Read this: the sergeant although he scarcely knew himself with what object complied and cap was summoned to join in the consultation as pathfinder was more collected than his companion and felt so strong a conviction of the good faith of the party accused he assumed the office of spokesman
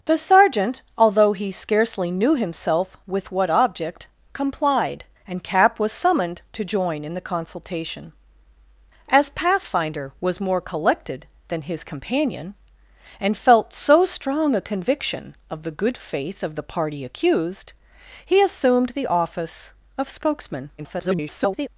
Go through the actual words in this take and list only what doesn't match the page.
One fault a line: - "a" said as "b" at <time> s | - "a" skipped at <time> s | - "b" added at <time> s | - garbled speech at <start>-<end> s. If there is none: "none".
- garbled speech at 20.8-21.7 s